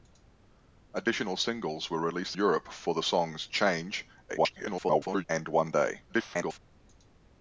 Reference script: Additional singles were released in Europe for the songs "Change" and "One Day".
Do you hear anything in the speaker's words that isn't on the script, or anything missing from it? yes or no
yes